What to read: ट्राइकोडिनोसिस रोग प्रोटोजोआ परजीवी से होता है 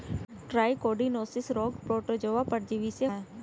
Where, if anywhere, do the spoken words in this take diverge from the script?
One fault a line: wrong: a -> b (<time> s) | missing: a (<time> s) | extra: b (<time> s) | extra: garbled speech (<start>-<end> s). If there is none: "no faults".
missing: होता (3.0 s)